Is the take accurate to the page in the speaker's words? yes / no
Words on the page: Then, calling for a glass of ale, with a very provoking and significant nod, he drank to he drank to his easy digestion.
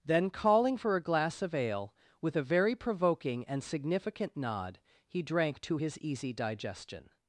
no